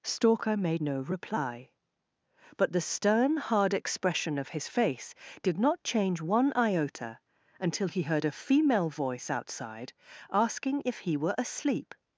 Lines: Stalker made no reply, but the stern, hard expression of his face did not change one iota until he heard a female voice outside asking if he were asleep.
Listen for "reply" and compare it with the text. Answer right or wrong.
right